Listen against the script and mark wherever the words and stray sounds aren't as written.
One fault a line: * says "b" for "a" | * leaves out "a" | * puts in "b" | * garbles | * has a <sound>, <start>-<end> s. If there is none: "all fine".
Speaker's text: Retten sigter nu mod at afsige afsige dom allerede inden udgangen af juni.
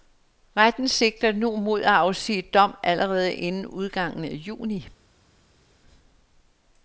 * leaves out "afsige"